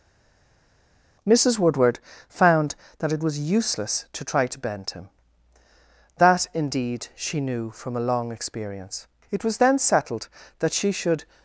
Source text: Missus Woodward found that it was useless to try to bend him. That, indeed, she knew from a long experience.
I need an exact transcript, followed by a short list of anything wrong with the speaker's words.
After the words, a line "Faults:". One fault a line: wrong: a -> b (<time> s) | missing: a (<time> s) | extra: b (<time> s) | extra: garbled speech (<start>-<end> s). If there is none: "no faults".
Missus Woodward found that it was useless to try to bend him. That, indeed, she knew from a long experience. It was then settled that she should
Faults:
extra: It was then settled that she should (9.3 s)